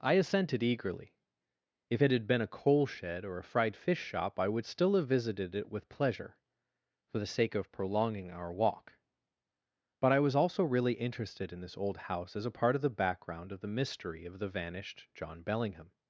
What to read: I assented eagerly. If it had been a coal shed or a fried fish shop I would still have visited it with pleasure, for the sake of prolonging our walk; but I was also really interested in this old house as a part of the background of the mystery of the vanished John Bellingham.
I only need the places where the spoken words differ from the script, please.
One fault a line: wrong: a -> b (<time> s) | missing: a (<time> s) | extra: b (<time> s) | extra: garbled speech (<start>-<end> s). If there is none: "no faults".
no faults